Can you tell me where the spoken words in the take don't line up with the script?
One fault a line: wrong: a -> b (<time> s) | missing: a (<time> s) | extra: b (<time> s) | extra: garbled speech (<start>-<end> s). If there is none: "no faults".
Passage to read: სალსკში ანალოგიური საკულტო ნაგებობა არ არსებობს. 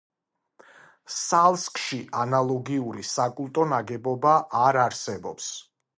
no faults